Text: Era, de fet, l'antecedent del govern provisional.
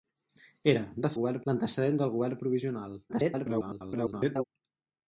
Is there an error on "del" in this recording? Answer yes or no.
no